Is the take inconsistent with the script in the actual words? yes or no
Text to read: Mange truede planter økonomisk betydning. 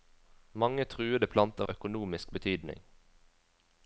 no